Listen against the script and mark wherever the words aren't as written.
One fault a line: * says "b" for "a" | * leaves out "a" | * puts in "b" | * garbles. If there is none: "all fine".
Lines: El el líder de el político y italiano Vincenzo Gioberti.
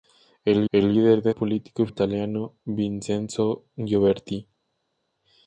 all fine